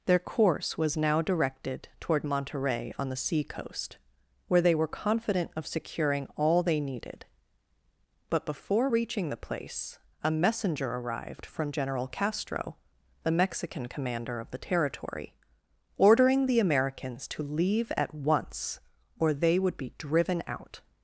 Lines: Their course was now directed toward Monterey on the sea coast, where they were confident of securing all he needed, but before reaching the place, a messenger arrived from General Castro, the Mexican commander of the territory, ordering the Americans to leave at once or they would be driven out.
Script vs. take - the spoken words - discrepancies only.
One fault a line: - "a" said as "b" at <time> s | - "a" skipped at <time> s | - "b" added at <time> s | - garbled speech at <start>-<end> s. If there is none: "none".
- "he" said as "they" at 6.6 s